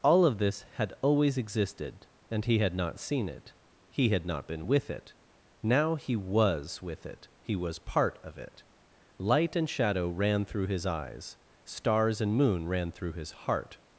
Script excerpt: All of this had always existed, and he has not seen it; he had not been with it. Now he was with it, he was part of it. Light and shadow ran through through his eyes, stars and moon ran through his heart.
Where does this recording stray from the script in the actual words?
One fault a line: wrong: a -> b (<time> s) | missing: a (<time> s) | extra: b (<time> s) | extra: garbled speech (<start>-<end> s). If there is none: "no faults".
wrong: has -> had (2.6 s)
missing: through (10.7 s)